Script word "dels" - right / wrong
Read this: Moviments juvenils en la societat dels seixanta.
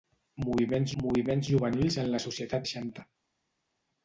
wrong